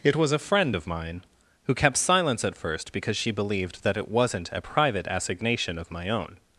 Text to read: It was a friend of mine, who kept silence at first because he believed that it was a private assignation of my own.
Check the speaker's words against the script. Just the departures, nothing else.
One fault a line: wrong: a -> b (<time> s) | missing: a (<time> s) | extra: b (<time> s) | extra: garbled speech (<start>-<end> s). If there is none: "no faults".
wrong: he -> she (3.2 s)
wrong: was -> wasn't (4.1 s)